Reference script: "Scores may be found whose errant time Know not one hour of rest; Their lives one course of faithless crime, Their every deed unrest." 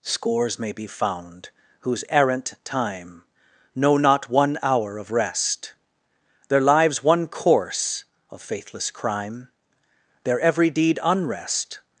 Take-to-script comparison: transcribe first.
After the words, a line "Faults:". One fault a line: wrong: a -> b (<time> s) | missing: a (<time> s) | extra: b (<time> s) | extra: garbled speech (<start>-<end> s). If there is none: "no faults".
"Scores may be found whose errant time Know not one hour of rest; Their lives one course of faithless crime, Their every deed unrest."
Faults:
no faults